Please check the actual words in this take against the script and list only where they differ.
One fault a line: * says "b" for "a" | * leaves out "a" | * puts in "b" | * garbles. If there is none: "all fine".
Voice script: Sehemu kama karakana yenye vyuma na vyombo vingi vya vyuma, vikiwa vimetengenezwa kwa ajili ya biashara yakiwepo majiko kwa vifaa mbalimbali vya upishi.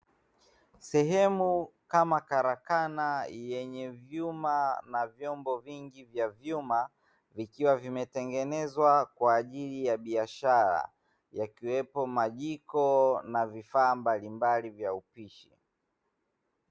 * says "na" for "kwa"